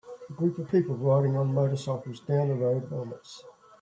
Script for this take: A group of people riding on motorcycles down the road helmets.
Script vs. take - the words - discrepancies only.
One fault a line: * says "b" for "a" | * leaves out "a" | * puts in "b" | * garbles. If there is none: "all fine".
all fine